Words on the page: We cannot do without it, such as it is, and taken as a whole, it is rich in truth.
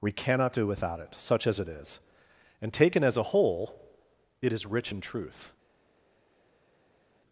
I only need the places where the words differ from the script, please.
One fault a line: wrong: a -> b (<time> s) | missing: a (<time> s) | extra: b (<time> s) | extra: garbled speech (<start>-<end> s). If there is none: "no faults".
no faults